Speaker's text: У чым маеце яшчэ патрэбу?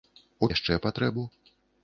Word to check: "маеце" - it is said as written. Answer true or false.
false